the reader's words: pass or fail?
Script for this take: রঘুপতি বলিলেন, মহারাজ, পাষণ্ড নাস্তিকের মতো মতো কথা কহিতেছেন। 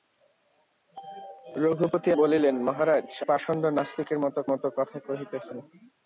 pass